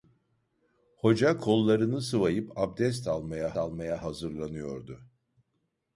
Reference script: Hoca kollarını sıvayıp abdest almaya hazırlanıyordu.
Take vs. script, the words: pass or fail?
fail